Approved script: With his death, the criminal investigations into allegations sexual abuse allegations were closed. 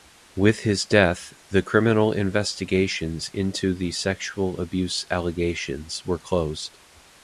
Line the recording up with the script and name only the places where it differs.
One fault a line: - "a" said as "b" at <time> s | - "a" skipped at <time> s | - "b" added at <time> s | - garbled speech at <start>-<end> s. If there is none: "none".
- "allegations" said as "the" at 3.7 s